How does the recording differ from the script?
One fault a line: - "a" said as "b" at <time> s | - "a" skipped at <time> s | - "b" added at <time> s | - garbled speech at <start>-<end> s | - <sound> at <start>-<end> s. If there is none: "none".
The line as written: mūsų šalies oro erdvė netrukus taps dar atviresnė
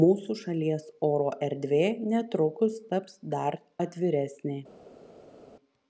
none